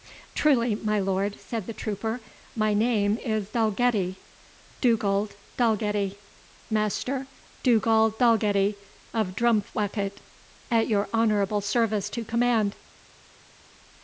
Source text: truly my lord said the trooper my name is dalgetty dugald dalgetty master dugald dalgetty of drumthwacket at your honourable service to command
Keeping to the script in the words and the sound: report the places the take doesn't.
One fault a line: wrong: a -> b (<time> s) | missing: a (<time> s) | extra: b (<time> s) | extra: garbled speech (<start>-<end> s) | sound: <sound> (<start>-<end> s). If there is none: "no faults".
no faults